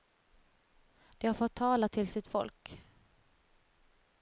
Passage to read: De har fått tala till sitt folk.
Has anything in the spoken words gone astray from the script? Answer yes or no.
no